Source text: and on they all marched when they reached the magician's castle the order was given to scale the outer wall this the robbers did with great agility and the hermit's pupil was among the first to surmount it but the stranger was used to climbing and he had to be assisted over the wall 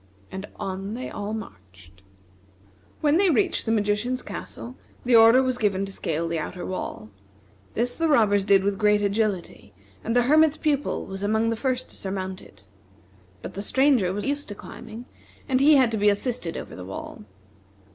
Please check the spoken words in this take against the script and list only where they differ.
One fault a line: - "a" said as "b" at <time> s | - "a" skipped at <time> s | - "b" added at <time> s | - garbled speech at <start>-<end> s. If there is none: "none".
none